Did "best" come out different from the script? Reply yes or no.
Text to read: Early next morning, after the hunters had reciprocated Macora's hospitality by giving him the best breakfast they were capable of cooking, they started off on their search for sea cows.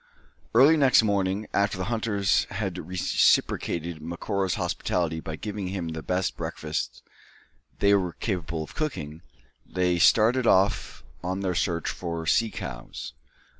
no